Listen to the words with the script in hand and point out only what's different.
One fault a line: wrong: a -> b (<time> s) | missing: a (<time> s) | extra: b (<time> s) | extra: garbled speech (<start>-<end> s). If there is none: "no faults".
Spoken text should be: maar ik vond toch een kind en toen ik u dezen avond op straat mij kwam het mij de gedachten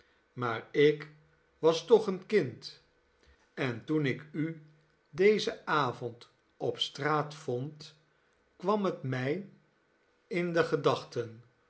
wrong: vond -> was (1.6 s)
wrong: mij -> vond (7.3 s)
extra: in (10.3 s)